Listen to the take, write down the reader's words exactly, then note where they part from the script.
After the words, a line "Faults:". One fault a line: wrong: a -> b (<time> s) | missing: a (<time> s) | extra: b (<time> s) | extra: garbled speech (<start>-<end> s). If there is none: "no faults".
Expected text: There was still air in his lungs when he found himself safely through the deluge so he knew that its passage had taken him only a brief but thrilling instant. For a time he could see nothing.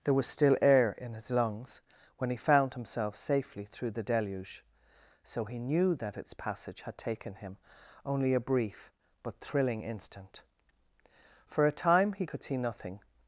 There was still air in his lungs when he found himself safely through the deluge so he knew that its passage had taken him only a brief but thrilling instant. For a time he could see nothing.
Faults:
no faults